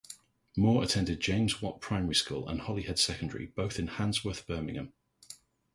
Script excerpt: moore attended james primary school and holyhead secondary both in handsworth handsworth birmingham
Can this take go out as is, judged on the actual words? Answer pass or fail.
fail